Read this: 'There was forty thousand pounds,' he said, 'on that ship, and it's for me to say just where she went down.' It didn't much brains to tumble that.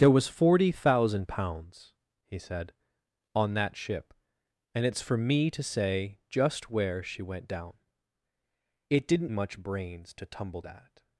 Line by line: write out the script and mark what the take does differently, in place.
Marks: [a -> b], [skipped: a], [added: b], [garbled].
'There was forty thousand pounds,' he said, 'on that ship, and it's for me to say just where she went down.' It didn't much brains to tumble that.